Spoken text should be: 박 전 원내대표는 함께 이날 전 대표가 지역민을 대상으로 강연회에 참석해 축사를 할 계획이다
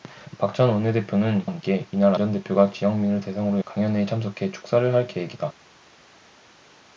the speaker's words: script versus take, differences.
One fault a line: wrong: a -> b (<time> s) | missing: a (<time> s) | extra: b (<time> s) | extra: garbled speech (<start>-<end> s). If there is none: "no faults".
no faults